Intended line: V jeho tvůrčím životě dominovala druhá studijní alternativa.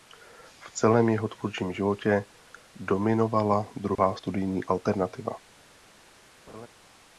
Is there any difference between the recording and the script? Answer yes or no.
yes